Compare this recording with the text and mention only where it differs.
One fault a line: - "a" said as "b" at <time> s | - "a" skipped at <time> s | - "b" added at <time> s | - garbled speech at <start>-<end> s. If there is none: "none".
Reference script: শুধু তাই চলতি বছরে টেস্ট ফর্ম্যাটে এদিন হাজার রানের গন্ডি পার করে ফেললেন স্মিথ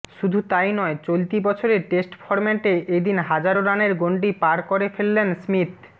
- "নয়" added at 0.7 s